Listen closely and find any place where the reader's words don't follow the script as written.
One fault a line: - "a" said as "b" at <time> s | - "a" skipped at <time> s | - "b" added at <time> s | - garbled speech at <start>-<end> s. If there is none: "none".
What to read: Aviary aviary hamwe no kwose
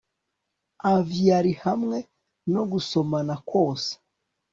- "aviary" skipped at 1.5 s
- "gusomana" added at 2.7 s